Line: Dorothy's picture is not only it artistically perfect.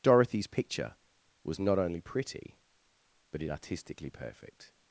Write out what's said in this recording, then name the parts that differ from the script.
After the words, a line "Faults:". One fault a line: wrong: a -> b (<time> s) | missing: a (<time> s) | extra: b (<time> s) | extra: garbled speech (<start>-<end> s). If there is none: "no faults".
Dorothy's picture was not only pretty, but it artistically perfect.
Faults:
wrong: is -> was (1.4 s)
extra: pretty but (2.0 s)